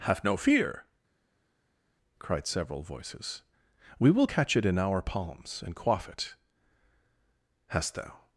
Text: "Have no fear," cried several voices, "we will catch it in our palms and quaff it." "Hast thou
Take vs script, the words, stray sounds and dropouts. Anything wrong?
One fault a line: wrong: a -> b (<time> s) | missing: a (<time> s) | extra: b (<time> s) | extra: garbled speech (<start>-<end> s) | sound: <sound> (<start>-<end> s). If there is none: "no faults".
no faults